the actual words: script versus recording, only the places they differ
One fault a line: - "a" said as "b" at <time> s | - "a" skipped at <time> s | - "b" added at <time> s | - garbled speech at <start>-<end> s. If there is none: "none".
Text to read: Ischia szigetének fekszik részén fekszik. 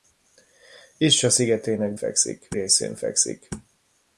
none